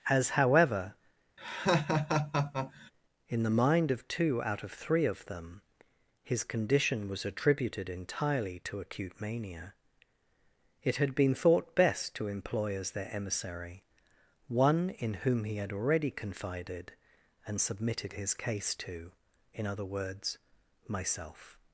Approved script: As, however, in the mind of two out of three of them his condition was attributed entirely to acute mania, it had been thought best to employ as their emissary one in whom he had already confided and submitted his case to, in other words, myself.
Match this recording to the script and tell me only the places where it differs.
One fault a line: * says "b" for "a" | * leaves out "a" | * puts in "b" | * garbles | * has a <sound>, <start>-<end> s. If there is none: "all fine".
* has a laugh, 1.4-2.9 s